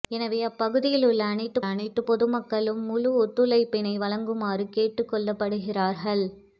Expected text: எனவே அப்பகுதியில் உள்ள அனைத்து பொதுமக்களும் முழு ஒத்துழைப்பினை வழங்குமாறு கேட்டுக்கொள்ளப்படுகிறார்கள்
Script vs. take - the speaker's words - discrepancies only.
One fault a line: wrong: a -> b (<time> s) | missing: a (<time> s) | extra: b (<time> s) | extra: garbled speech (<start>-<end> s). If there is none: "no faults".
extra: அனைத்து (1.6 s)